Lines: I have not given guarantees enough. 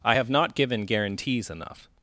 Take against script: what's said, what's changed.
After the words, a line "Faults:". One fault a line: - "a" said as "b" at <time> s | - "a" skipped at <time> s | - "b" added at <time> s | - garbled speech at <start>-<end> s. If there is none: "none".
I have not given guarantees enough.
Faults:
none